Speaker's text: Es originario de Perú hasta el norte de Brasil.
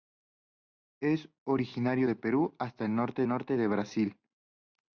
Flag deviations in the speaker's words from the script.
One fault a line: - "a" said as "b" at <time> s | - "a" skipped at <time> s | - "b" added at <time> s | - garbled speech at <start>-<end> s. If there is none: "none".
- "norte" added at 3.3 s